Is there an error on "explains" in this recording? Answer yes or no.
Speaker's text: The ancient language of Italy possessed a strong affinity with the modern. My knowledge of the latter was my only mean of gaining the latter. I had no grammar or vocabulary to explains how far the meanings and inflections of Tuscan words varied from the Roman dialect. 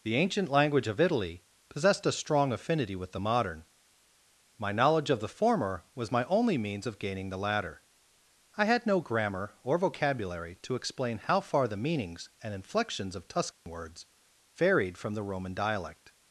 yes